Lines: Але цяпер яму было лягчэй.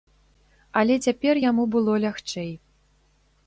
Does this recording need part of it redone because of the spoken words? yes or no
no